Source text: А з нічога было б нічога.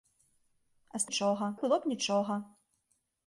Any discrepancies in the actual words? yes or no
no